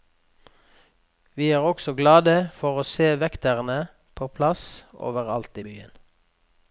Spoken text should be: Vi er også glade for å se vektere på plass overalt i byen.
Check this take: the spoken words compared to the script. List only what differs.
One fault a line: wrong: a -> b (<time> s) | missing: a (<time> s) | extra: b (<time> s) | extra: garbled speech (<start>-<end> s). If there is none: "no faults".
no faults